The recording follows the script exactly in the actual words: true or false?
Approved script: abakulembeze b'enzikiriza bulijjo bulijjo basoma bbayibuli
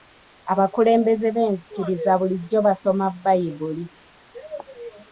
false